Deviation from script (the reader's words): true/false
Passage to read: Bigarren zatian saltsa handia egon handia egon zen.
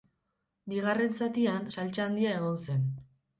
true